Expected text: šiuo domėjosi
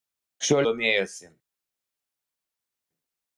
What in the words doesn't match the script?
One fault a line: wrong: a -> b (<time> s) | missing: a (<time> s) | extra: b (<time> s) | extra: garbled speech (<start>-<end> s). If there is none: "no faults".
no faults